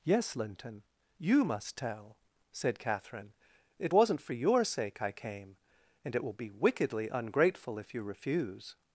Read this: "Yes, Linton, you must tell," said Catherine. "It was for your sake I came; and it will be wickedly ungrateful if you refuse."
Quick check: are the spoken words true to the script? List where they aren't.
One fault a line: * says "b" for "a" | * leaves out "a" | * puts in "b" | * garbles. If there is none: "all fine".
* says "wasn't" for "was"